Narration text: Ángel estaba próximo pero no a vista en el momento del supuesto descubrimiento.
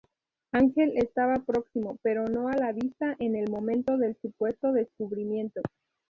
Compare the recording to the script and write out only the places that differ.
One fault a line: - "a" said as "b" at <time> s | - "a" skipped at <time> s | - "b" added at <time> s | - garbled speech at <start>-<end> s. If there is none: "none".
- "la" added at 2.5 s